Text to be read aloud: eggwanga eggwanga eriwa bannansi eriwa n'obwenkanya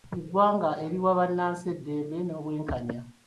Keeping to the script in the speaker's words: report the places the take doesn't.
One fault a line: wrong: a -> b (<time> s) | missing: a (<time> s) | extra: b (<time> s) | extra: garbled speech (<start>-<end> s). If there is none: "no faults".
missing: eggwanga (0.7 s)
wrong: eriwa -> eddembe (1.7 s)